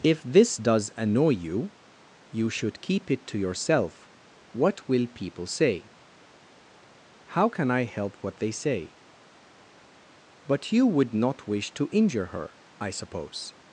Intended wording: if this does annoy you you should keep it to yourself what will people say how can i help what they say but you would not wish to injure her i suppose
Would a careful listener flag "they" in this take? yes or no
no